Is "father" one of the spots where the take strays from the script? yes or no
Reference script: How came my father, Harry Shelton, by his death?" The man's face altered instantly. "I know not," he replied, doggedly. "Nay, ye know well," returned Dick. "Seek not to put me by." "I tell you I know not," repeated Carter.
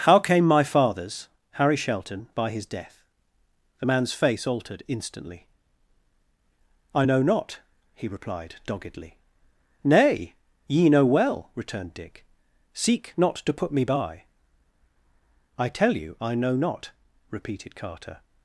yes